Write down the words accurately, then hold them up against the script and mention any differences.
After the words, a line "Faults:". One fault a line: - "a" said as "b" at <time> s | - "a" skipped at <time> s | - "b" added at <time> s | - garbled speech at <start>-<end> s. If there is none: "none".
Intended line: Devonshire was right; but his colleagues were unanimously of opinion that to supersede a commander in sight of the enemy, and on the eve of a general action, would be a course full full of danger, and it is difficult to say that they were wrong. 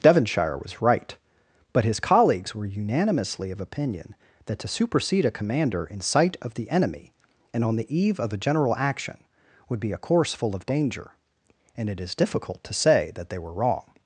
Devonshire was right; but his colleagues were unanimously of opinion that to supersede a commander in sight of the enemy, and on the eve of a general action, would be a course full of danger, and it is difficult to say that they were wrong.
Faults:
- "full" skipped at 10.6 s